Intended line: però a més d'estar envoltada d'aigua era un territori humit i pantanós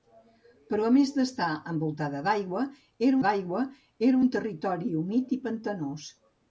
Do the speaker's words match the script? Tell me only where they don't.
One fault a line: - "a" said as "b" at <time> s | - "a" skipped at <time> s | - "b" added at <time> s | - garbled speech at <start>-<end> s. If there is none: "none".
- "d'aigua era" added at 3.3 s